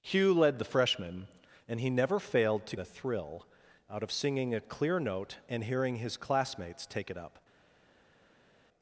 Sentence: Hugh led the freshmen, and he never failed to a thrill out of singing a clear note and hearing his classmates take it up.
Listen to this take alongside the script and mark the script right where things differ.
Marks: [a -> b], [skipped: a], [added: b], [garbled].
Hugh led the freshmen, and he never failed to a thrill out of singing a clear note and hearing his classmates take it up.